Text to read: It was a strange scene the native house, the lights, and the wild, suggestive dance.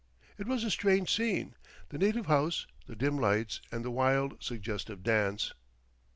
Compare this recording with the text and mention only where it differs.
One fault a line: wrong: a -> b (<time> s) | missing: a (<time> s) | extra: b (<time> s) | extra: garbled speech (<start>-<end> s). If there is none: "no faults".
extra: dim (3.0 s)